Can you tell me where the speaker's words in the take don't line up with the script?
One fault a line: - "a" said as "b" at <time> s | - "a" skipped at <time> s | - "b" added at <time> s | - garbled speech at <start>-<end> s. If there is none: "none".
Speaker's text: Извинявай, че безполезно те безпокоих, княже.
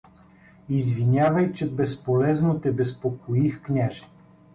none